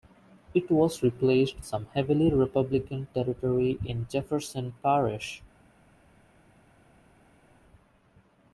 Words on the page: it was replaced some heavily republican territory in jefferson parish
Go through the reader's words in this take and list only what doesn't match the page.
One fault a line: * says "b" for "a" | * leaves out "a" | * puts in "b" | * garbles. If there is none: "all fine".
all fine